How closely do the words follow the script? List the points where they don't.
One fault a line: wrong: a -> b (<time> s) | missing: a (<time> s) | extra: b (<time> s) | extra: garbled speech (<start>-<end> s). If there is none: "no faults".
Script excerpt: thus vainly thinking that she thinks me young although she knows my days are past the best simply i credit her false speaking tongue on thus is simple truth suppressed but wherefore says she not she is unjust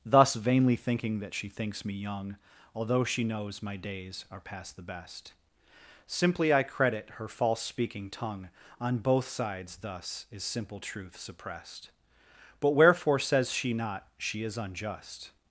extra: both sides (9.0 s)